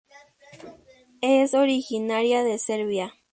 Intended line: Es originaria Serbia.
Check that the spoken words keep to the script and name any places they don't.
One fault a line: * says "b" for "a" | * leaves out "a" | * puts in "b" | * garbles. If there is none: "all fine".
* puts in "de"